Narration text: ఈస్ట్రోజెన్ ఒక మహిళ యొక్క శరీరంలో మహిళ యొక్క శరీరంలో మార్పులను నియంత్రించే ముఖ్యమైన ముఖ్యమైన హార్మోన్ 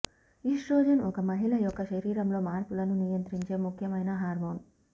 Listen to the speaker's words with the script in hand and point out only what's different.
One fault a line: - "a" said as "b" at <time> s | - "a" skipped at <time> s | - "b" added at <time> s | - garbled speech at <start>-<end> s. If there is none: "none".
- "మహిళ యొక్క శరీరంలో" skipped at 2.4 s
- "ముఖ్యమైన" skipped at 4.1 s